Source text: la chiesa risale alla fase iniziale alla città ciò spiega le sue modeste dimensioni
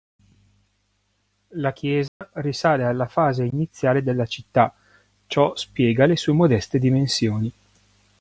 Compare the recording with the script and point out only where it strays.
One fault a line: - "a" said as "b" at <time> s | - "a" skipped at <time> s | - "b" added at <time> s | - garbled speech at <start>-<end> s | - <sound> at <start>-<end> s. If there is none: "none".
- dropout at 2.1-2.2 s
- "alla" said as "della" at 4.0 s